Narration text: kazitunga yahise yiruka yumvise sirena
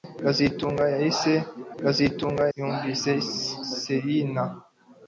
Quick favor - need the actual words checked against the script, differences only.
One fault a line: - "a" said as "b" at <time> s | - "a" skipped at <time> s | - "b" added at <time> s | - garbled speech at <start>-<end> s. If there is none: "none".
- "yiruka" said as "kazitunga" at 1.8 s